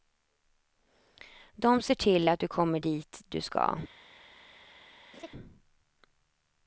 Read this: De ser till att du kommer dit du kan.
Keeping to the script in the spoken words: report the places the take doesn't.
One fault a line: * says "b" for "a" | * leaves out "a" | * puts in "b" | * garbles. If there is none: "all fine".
* says "ska" for "kan"